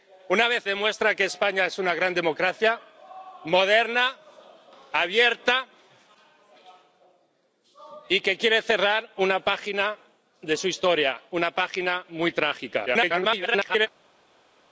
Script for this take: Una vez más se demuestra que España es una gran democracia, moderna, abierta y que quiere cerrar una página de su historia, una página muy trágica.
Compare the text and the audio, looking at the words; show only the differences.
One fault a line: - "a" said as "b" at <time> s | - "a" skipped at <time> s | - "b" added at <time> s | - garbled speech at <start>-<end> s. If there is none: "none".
- "más se" skipped at 0.7 s
- garbled speech at 12.9-13.9 s